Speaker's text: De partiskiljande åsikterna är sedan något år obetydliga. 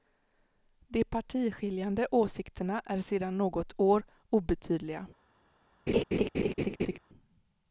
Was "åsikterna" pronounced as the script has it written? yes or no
yes